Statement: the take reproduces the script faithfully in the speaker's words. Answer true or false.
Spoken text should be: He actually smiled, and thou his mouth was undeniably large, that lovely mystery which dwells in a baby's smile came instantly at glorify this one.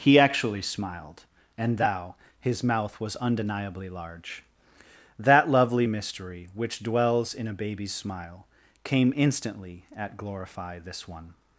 true